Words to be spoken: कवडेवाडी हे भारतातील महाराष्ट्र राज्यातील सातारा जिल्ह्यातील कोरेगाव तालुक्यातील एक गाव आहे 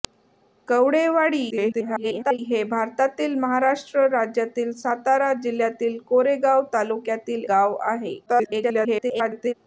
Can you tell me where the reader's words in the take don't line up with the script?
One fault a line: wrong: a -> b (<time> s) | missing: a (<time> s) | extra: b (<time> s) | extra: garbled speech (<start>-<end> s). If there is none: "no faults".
extra: garbled speech (1.5-2.4 s)
missing: एक (7.4 s)
extra: garbled speech (8.3-9.5 s)